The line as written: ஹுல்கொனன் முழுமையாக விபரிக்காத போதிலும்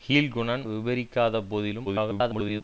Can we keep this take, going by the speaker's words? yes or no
no